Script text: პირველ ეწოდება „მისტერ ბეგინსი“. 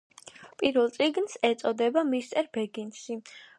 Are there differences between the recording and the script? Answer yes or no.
yes